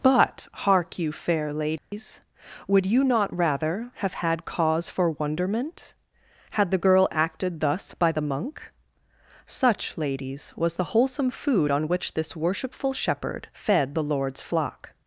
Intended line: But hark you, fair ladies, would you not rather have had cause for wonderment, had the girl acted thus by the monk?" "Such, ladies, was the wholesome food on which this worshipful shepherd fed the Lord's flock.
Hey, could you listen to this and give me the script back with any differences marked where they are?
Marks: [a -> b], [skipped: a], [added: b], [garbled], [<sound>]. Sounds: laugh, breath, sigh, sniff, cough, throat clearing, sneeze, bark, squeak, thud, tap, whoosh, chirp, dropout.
But hark you, fair ladies, [dropout] would you not rather have had cause for wonderment, had the girl acted thus by the monk?" "Such, ladies, was the wholesome food on which this worshipful shepherd fed the Lord's flock.